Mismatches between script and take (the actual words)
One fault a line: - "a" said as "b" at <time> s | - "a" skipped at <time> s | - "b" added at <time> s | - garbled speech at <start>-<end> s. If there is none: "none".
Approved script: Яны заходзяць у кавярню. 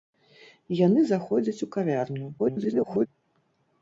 - garbled speech at 2.4-3.1 s